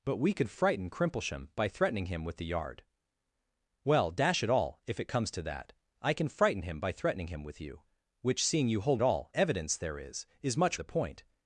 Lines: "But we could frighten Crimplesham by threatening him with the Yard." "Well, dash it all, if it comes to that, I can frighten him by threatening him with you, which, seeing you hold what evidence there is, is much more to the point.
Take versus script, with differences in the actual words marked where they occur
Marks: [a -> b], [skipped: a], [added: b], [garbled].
"But we could frighten Crimplesham by threatening him with the Yard." "Well, dash it all, if it comes to that, I can frighten him by threatening him with you, which, seeing you hold [what -> all] evidence there is, is much [skipped: more to] the point.